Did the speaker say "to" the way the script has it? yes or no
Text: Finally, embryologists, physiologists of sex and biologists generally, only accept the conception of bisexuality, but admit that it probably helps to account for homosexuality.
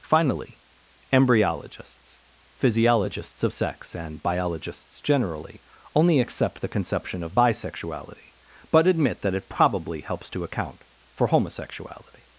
yes